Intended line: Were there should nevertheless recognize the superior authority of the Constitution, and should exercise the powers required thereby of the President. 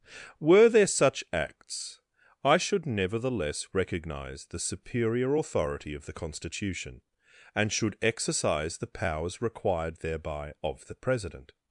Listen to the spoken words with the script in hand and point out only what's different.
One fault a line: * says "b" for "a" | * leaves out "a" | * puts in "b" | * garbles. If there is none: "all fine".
* puts in "such acts I"